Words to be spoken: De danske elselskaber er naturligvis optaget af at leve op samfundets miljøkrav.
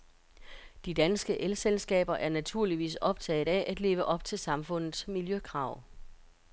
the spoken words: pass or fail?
fail